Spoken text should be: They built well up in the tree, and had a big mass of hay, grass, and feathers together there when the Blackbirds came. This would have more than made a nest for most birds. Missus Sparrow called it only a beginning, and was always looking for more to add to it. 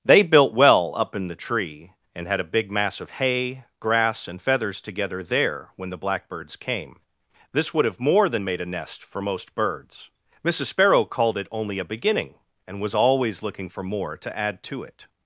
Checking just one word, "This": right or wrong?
right